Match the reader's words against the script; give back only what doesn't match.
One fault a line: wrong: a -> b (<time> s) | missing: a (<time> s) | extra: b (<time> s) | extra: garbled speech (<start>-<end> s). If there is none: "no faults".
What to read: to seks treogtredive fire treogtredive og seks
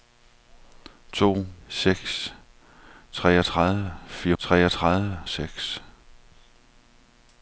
no faults